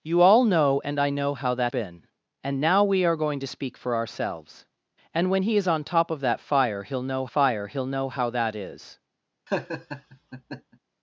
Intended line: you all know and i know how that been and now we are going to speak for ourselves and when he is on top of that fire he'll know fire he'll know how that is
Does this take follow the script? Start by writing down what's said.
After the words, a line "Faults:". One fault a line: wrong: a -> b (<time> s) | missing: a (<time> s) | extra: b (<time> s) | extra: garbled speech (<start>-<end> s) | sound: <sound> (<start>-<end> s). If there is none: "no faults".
you all know and i know how that been and now we are going to speak for ourselves and when he is on top of that fire he'll know fire he'll know how that is
Faults:
sound: laugh (9.5-10.8 s)